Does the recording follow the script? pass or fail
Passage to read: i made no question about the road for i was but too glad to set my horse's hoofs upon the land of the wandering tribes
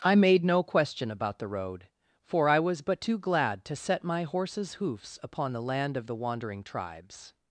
pass